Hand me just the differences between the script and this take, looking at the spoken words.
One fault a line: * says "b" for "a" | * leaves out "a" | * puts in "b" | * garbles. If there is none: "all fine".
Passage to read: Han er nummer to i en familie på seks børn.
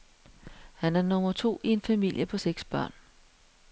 all fine